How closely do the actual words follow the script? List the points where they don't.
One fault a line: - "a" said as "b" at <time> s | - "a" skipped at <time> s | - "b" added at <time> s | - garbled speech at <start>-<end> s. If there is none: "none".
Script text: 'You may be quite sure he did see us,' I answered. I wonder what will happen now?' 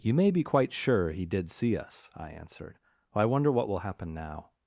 none